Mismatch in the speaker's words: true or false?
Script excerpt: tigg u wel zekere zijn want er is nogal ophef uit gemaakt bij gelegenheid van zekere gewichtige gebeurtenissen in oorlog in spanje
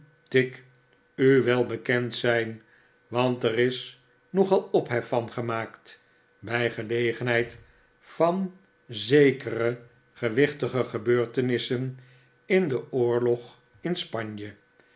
true